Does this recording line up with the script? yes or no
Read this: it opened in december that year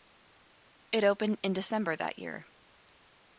yes